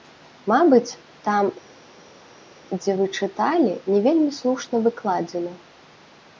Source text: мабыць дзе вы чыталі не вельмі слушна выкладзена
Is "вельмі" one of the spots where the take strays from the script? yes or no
no